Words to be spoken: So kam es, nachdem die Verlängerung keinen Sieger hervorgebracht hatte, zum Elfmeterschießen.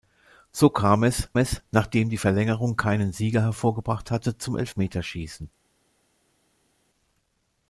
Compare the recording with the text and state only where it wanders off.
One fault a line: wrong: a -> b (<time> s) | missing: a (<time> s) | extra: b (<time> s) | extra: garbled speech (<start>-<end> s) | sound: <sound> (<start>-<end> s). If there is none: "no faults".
extra: es (1.4 s)